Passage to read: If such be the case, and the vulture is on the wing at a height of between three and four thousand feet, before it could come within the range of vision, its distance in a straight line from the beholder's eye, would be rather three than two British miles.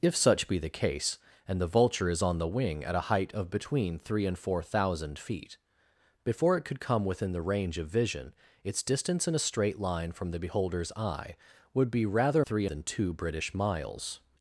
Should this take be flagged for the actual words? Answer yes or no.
no